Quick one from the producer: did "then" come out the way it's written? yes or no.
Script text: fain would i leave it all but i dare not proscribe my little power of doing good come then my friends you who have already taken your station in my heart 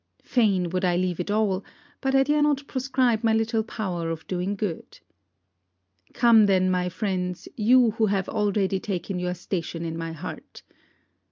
yes